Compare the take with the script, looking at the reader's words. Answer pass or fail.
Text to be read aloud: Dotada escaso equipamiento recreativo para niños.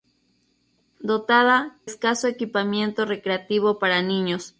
pass